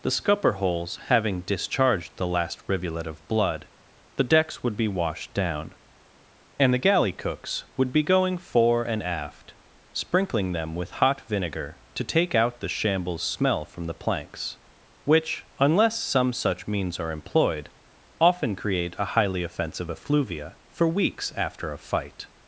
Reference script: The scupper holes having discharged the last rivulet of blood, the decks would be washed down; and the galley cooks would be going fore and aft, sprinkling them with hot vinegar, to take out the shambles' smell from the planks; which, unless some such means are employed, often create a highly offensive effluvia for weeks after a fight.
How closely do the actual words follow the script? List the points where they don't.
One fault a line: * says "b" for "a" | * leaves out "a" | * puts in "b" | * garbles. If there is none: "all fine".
all fine